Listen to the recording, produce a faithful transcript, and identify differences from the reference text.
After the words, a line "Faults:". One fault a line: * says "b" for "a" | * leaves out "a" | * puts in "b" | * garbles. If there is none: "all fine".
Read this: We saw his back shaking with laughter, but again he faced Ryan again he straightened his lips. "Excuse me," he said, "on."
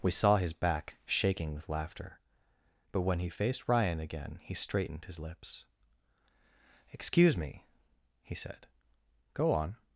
We saw his back shaking with laughter, but when he faced Ryan again he straightened his lips. "Excuse me," he said, "go on."
Faults:
* says "when" for "again"
* puts in "go"